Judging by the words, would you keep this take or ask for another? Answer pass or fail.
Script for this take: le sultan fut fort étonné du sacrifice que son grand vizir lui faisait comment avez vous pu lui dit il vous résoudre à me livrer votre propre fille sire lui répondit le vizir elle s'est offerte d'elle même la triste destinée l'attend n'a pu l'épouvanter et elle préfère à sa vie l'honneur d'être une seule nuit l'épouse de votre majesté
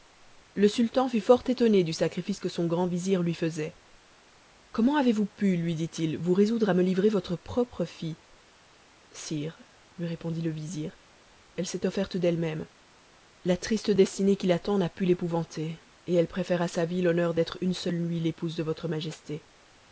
fail